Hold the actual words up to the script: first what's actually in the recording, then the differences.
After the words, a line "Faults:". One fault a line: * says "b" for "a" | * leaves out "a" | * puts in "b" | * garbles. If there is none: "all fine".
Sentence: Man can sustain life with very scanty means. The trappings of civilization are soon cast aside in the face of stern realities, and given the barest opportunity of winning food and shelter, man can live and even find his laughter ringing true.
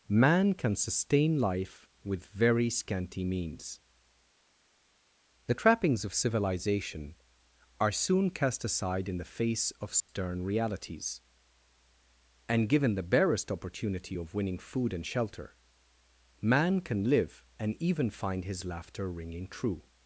Man can sustain life with very scanty means. The trappings of civilization are soon cast aside in the face of stern realities, and given the barest opportunity of winning food and shelter, man can live and even find his laughter ringing true.
Faults:
all fine